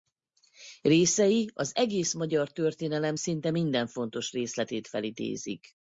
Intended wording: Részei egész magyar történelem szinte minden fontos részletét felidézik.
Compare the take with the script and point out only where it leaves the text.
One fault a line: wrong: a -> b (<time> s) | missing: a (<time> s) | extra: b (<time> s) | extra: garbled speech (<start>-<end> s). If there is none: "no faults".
extra: az (1.5 s)